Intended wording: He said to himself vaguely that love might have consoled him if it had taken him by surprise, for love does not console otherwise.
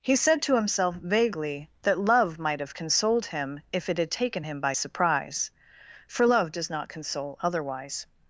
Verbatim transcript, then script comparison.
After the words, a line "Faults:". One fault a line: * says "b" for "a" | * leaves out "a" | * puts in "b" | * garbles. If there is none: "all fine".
He said to himself vaguely that love might have consoled him if it had taken him by surprise, for love does not console otherwise.
Faults:
all fine